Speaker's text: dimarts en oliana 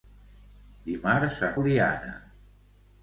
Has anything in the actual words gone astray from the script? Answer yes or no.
no